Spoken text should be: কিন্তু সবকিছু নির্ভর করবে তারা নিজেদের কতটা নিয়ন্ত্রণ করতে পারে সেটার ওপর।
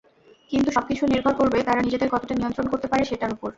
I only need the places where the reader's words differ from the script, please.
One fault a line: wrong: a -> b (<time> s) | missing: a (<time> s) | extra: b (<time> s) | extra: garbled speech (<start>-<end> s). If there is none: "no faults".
no faults